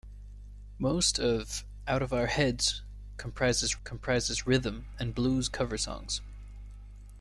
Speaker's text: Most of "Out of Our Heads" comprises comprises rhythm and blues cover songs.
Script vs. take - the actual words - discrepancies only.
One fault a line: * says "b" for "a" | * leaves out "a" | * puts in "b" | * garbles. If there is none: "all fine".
all fine